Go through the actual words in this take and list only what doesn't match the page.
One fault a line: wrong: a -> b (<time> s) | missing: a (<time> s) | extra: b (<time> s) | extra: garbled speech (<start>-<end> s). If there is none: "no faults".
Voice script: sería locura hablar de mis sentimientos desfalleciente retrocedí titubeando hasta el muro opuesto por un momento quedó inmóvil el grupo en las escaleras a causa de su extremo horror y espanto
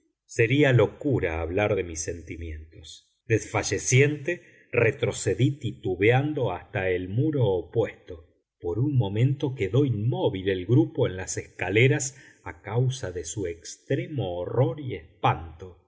no faults